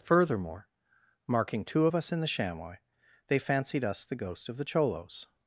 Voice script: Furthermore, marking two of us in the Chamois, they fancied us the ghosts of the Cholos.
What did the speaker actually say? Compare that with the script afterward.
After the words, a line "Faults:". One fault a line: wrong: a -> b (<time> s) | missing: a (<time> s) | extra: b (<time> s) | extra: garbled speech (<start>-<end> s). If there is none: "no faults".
Furthermore, marking two of us in the Chamois, they fancied us the ghost of the Cholos.
Faults:
wrong: ghosts -> ghost (4.2 s)